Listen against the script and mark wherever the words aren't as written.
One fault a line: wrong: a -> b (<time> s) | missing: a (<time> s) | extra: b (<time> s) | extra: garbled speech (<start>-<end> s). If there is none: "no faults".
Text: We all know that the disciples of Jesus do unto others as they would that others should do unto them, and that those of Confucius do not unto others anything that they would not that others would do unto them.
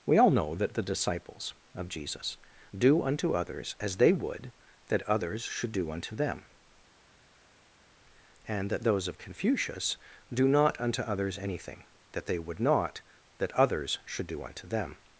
wrong: would -> should (14.0 s)